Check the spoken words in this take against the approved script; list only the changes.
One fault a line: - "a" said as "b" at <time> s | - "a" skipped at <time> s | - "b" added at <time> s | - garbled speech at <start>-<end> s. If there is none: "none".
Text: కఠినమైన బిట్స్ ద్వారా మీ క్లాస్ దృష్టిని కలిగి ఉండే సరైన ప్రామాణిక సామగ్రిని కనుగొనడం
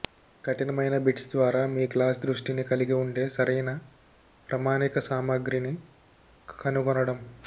none